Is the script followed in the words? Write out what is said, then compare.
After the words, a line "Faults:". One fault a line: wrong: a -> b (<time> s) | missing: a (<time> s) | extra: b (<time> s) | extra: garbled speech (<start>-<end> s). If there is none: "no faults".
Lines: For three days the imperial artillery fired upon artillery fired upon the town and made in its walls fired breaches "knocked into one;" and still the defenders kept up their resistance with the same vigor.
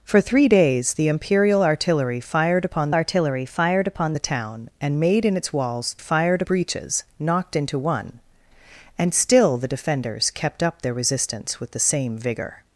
For three days the imperial artillery fired upon artillery fired upon the town and made in its walls fired breaches "knocked into one;" and still the defenders kept up their resistance with the same vigor.
Faults:
no faults